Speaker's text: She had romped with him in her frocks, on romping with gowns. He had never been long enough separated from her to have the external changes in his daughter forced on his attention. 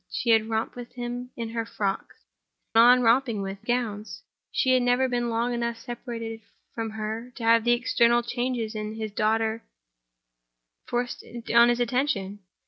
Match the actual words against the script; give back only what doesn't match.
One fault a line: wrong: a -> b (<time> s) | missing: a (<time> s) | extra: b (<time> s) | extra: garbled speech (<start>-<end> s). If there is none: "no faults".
no faults